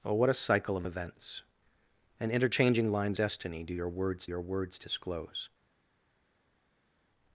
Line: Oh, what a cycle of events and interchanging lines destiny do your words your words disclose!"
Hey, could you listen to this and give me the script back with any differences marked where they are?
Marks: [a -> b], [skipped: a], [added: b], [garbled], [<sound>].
Oh, what a cycle of events and interchanging lines destiny do your words your words disclose!"